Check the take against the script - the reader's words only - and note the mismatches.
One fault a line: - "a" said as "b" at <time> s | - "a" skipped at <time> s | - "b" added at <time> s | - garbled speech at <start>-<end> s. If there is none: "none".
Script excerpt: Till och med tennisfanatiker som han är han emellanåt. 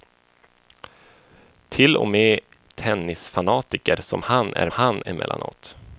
none